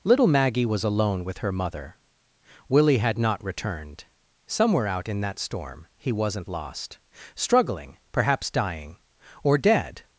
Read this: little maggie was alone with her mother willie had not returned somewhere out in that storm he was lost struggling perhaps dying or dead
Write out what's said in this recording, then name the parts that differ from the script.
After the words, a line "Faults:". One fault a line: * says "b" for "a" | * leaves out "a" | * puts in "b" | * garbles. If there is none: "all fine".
little maggie was alone with her mother willie had not returned somewhere out in that storm he wasn't lost struggling perhaps dying or dead
Faults:
* says "wasn't" for "was"